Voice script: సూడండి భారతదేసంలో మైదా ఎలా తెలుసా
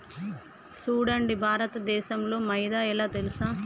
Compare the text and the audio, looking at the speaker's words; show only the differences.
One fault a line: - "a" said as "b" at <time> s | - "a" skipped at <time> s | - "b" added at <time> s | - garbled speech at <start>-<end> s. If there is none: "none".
none